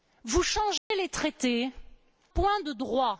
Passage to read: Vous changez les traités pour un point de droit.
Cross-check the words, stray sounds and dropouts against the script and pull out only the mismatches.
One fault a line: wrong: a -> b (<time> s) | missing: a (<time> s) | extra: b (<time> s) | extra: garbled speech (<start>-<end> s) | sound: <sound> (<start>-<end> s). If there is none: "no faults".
sound: dropout (0.8-0.9 s)
missing: pour un (1.7 s)